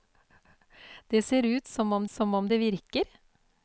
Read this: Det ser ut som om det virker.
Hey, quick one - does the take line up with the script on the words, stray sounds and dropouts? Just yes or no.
no